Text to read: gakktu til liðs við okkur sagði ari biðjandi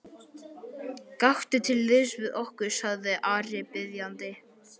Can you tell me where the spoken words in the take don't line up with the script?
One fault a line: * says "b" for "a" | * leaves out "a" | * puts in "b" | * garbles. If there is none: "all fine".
all fine